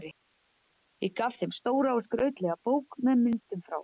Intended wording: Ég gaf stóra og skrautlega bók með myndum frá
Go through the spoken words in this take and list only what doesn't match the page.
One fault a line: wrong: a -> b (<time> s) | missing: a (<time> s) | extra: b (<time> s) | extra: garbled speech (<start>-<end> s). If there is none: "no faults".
extra: þeim (1.4 s)